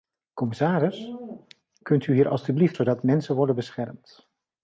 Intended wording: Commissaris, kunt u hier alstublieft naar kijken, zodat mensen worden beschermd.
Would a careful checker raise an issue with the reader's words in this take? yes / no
yes